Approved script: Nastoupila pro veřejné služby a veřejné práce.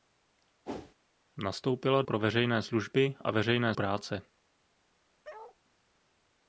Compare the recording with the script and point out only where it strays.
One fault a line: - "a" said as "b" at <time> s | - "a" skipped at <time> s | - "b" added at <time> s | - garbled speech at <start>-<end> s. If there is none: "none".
none